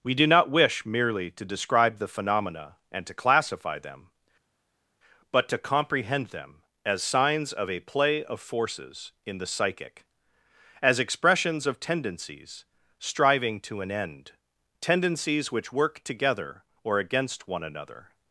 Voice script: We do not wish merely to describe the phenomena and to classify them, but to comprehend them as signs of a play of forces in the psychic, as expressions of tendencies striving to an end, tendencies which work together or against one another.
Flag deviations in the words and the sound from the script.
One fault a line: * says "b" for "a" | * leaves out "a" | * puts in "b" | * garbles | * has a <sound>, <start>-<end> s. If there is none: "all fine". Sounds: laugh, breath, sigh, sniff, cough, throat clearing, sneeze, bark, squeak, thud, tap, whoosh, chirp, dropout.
all fine